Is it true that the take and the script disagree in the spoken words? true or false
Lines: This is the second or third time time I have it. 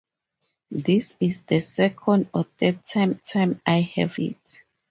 false